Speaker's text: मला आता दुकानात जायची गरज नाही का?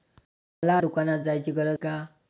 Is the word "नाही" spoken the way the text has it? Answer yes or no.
no